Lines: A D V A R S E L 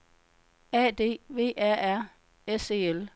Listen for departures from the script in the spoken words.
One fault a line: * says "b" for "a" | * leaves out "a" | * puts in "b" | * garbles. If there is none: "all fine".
all fine